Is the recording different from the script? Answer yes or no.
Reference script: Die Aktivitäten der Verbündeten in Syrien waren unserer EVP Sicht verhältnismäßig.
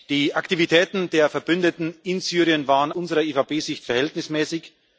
no